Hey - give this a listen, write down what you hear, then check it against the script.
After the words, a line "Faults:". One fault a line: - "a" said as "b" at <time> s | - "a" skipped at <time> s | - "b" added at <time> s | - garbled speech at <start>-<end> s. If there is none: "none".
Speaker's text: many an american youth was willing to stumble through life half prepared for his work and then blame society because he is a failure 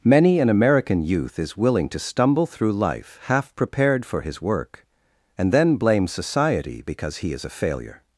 many an american youth is willing to stumble through life half prepared for his work and then blame society because he is a failure
Faults:
- "was" said as "is" at 1.4 s